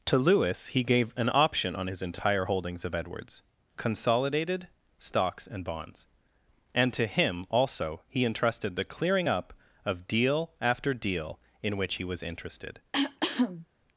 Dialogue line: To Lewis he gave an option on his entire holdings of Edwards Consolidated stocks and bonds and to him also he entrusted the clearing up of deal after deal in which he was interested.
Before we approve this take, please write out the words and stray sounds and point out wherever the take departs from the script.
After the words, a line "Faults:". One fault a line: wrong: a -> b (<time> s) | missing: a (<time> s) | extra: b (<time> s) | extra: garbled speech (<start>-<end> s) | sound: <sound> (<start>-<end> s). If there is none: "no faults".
To Lewis he gave an option on his entire holdings of Edwards Consolidated stocks and bonds and to him also he entrusted the clearing up of deal after deal in which he was interested.
Faults:
sound: cough (12.9-13.7 s)